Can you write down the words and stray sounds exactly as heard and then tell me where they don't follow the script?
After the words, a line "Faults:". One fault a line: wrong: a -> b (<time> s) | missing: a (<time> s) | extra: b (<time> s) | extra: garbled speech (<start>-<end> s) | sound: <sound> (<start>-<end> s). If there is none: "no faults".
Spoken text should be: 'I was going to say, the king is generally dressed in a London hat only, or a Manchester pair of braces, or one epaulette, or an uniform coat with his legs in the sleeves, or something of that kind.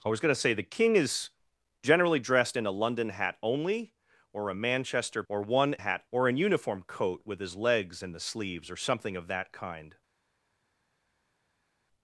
'I was going to say, the king is generally dressed in a London hat only, or a Manchester or one hat, or an uniform coat with his legs in the sleeves, or something of that kind.
Faults:
missing: pair of braces (5.2 s)
wrong: epaulette -> hat (5.8 s)